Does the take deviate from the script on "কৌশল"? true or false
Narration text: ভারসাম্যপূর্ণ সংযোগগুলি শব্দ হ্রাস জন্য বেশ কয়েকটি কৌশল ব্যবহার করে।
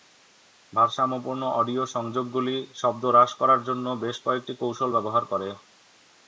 false